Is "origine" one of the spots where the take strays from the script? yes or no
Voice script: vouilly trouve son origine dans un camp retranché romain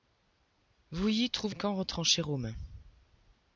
yes